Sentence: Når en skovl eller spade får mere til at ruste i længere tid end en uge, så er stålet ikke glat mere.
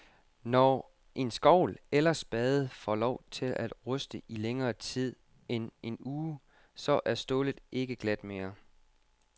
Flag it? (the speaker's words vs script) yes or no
yes